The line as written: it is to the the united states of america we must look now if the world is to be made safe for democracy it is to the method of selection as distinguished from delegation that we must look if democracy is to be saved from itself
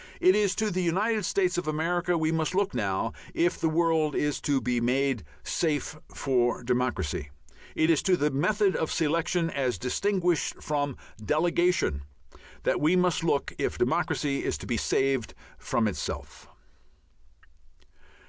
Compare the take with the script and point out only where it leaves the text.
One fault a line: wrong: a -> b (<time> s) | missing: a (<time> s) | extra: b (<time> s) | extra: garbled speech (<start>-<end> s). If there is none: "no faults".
missing: the (0.8 s)